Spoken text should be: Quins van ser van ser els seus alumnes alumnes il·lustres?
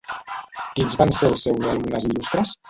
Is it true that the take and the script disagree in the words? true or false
true